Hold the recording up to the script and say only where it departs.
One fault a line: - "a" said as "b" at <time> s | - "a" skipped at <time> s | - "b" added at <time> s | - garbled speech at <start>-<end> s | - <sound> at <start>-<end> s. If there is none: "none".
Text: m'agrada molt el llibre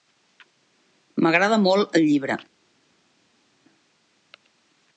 none